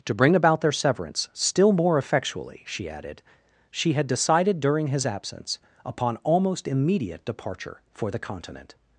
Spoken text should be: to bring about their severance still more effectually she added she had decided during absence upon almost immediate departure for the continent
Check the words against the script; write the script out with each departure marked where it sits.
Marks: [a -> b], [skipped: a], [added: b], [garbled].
to bring about their severance still more effectually she added she had decided during [added: his] absence upon almost immediate departure for the continent